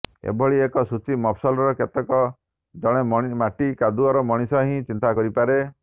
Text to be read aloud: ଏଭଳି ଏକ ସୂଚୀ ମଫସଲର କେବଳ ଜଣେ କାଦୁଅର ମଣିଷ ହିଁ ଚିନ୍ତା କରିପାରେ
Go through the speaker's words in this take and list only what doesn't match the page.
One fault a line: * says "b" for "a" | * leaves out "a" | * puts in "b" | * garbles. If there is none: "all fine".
* puts in "ମାଟି"